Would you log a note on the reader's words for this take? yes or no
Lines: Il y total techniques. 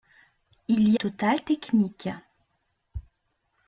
no